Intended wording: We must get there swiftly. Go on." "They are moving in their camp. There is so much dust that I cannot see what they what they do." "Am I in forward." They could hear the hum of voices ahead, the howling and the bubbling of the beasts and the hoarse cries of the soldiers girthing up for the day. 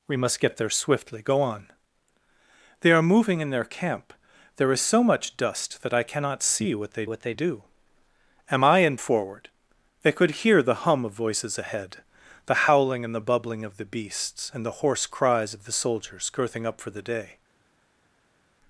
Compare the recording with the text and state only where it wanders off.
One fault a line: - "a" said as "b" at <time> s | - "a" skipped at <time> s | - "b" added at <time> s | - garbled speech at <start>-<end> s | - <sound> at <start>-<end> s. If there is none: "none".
none